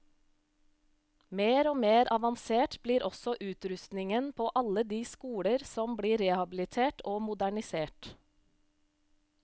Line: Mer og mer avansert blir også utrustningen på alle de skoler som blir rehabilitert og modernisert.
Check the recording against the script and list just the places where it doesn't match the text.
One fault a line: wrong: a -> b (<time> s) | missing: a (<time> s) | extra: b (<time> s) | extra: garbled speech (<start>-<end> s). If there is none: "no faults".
no faults